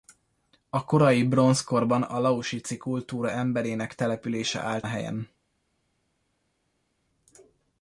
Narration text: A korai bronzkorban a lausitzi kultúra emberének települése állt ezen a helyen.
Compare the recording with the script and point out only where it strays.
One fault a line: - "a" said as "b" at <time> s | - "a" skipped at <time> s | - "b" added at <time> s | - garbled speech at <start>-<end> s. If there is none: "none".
- "ezen" skipped at 4.9 s